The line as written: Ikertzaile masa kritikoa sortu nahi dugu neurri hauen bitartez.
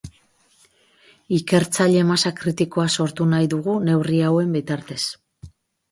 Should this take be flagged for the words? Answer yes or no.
no